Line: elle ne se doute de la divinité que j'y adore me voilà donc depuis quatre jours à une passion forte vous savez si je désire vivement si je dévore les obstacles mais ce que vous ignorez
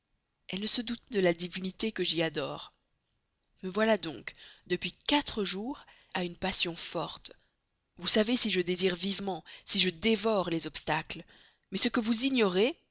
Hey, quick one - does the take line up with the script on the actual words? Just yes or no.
yes